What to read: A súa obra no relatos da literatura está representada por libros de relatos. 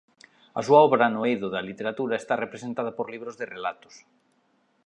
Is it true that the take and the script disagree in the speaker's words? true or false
true